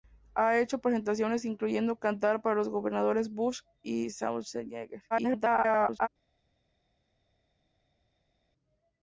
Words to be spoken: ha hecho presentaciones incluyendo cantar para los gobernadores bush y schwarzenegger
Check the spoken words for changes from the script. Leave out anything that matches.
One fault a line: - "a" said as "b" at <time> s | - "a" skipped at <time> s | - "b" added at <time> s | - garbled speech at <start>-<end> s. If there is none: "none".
- garbled speech at 5.1-6.1 s